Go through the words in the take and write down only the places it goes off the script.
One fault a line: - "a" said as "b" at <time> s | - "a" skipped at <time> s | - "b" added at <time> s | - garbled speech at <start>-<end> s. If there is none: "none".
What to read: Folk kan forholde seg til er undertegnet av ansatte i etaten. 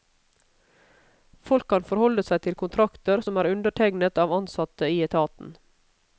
- "kontrakter som" added at 2.6 s